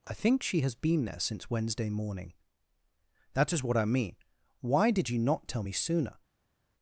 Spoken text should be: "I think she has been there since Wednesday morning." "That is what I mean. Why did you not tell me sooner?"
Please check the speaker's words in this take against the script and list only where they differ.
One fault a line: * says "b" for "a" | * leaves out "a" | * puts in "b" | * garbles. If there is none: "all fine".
all fine